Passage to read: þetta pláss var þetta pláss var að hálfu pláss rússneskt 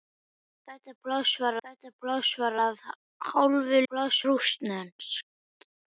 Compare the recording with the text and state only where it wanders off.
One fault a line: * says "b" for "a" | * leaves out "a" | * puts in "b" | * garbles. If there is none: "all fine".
all fine